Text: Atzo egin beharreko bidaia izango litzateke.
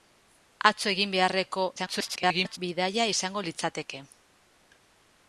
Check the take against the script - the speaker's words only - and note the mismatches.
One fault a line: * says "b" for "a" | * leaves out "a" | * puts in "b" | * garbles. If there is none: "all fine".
* garbles